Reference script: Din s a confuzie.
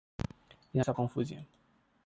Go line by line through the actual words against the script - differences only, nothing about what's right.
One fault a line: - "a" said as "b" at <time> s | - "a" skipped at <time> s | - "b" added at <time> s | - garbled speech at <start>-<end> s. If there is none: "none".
none